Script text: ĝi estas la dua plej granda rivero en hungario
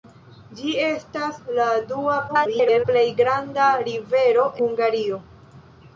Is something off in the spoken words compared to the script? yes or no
yes